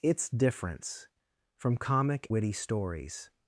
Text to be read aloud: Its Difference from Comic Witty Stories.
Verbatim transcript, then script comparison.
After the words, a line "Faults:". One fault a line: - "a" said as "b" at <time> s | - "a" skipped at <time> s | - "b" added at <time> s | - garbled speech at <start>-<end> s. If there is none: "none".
Its Difference from Comic Witty Stories.
Faults:
none